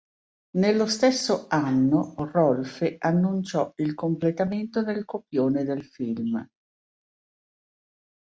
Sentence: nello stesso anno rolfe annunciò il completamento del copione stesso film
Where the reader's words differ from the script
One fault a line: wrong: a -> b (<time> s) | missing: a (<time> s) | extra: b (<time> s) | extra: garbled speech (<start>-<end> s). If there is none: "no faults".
wrong: stesso -> del (5.6 s)